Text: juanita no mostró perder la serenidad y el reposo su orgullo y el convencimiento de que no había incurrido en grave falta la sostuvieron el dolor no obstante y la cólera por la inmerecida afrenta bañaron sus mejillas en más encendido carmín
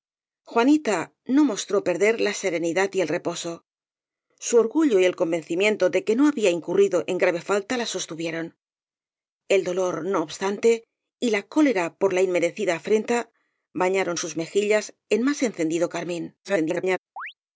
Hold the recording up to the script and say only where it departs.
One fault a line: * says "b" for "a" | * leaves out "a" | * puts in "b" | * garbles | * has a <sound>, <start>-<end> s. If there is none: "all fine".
* garbles
* has a chirp, 17.2-17.3 s